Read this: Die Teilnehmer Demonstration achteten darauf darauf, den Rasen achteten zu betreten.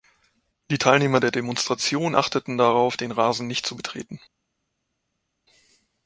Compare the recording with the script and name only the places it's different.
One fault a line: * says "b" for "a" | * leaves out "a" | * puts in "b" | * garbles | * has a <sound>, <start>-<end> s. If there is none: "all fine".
* puts in "der"
* leaves out "darauf"
* says "nicht" for "achteten"